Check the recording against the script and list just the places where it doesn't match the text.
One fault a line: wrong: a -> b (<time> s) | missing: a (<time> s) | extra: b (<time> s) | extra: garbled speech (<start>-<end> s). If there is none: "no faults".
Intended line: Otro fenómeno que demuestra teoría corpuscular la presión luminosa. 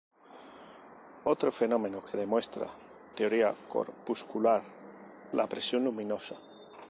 no faults